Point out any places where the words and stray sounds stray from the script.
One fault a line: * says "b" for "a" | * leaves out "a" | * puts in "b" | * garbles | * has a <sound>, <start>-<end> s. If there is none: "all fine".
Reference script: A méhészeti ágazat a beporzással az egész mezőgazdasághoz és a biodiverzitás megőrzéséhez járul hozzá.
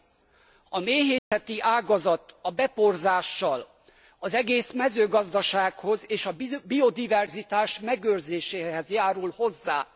* has a dropout, 1.2-1.3 s